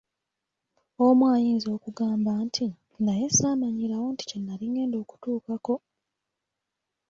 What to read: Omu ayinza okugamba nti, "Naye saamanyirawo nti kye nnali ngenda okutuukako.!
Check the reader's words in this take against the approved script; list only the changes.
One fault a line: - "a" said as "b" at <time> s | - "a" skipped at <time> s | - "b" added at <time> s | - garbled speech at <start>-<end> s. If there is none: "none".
none